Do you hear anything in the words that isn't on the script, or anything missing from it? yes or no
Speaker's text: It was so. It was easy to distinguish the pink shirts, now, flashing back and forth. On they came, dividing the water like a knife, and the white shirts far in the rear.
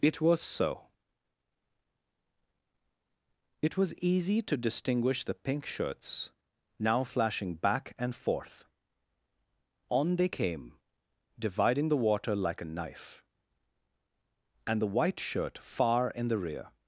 yes